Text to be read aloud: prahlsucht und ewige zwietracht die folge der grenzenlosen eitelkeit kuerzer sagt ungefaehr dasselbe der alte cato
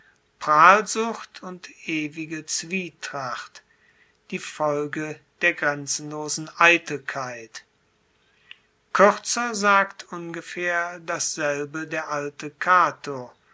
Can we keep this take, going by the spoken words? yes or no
yes